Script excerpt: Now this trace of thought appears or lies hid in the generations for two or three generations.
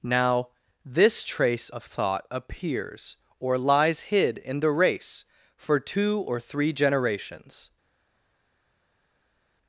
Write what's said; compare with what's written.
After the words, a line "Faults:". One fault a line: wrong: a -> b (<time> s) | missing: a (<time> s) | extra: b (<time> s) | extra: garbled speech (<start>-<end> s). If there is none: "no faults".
Now this trace of thought appears or lies hid in the race for two or three generations.
Faults:
wrong: generations -> race (4.7 s)